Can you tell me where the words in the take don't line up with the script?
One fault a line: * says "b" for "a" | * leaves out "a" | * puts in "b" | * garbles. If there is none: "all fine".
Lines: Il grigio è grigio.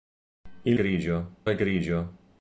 all fine